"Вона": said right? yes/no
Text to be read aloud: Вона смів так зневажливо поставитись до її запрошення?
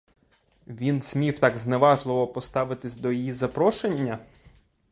no